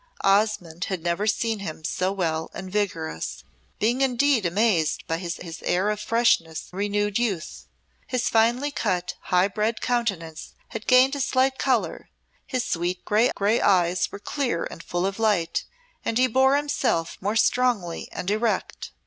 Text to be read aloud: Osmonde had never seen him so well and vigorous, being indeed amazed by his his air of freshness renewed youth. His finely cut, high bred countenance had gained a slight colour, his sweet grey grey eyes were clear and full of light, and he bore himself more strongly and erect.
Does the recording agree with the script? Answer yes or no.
yes